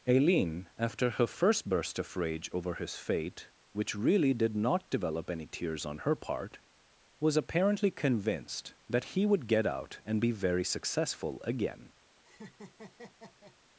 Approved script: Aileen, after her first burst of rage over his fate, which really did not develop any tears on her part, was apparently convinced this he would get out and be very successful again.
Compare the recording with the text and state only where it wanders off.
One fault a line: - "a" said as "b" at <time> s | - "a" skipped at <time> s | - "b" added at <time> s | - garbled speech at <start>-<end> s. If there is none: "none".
- "this" said as "that" at 8.9 s